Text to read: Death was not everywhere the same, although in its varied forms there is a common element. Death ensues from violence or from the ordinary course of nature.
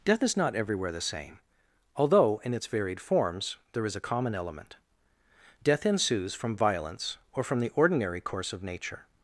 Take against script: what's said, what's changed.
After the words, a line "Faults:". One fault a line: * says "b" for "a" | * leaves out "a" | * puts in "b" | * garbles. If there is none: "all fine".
Death is not everywhere the same, although in its varied forms there is a common element. Death ensues from violence or from the ordinary course of nature.
Faults:
* says "is" for "was"